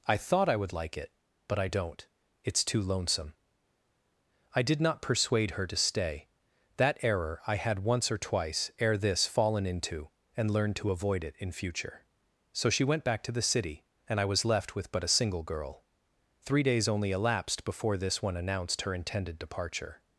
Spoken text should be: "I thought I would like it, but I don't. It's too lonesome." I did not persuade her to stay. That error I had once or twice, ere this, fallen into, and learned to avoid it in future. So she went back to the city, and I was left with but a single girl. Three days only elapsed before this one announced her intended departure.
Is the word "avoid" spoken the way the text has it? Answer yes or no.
yes